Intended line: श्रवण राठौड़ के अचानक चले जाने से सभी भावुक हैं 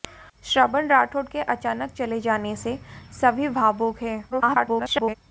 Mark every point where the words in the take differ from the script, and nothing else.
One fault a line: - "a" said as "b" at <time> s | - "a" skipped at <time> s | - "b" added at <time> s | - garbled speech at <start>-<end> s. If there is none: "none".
- garbled speech at 4.3-5.2 s